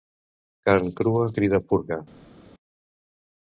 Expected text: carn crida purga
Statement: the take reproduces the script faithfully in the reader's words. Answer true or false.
false